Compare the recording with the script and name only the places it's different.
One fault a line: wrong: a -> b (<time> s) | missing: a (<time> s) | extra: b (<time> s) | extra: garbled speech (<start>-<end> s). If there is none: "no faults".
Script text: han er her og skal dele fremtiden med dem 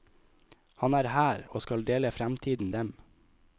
missing: med (2.7 s)